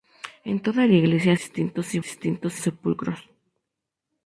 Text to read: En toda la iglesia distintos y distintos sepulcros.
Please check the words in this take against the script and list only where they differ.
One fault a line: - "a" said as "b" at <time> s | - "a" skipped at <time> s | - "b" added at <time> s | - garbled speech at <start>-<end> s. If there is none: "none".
none